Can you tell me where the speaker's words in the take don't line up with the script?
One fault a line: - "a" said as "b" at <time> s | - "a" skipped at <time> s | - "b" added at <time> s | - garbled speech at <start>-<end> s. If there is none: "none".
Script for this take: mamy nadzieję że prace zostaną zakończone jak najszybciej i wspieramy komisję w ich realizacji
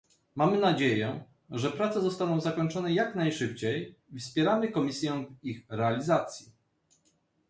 none